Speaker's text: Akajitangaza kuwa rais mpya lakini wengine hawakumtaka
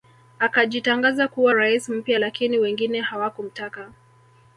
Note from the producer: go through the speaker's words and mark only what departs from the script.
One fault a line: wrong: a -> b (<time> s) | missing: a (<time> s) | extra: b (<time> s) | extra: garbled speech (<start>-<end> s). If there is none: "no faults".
no faults